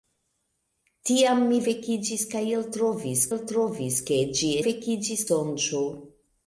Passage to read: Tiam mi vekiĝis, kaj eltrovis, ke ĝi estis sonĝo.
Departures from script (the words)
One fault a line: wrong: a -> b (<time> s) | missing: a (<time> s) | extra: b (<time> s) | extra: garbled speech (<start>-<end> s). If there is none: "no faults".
extra: eltrovis (3.4 s)
wrong: estis -> vekiĝis (4.6 s)